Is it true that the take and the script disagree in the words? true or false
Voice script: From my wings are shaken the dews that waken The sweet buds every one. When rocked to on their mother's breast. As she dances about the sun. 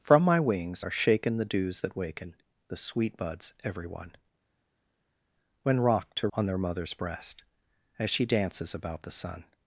false